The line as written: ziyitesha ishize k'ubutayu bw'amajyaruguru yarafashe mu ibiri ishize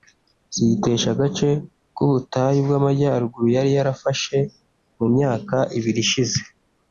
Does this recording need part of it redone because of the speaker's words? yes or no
yes